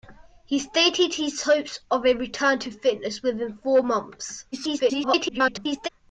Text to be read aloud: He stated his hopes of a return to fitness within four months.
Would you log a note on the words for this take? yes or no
yes